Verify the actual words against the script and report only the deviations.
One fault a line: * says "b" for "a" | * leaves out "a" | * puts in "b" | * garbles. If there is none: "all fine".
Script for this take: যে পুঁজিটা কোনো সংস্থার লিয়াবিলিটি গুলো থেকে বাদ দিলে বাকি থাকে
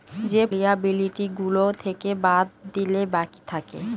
* leaves out "পুঁজিটা কোনো সংস্থার"